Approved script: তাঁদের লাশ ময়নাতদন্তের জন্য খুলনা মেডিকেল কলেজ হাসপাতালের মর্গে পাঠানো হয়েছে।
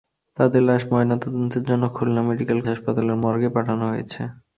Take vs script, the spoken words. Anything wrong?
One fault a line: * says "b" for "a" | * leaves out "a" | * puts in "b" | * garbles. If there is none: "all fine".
* leaves out "কলেজ"